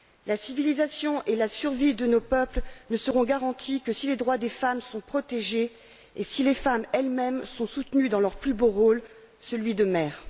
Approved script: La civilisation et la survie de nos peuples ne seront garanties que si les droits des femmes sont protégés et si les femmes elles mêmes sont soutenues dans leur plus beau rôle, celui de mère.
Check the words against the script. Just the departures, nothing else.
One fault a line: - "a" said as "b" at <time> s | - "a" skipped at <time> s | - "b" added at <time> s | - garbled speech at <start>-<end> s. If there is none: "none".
none